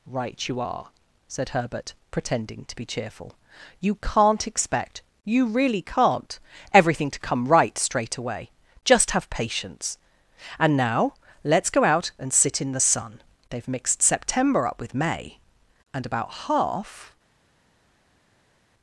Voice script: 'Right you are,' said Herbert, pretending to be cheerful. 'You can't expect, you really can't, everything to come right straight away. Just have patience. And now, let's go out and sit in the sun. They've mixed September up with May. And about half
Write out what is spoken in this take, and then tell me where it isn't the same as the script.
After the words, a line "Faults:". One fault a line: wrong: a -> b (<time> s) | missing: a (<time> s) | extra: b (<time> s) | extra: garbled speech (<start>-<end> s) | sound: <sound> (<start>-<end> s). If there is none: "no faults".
'Right you are,' said Herbert, pretending to be cheerful. 'You can't expect, you really can't, everything to come right straight away. Just have patience. And now, let's go out and sit in the sun. They've mixed September up with May. And about half
Faults:
no faults